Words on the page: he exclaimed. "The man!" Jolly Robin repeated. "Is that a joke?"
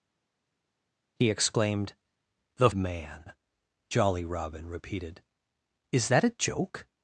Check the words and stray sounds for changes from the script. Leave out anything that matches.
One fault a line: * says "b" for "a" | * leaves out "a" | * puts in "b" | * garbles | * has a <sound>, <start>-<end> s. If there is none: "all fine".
all fine